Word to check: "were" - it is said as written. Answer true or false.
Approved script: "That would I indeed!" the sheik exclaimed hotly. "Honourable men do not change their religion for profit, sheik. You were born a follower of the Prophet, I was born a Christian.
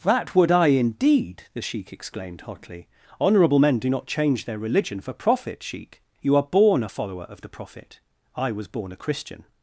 false